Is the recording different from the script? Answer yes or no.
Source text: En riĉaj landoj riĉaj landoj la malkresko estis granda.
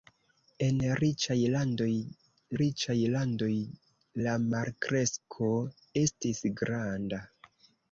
no